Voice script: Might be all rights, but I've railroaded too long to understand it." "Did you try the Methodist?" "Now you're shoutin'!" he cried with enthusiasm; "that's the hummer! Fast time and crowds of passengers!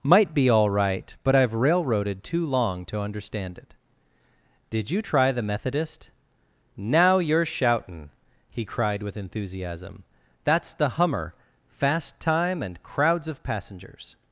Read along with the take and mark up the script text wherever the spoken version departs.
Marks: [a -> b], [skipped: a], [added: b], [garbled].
Might be all [rights, -> right] but I've railroaded too long to understand it." "Did you try the Methodist?" "Now you're shoutin'!" he cried with enthusiasm; "that's the hummer! Fast time and crowds of passengers!